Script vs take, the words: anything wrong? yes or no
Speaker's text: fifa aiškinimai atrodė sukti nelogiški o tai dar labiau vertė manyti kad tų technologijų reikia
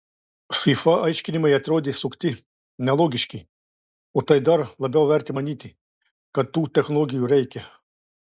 no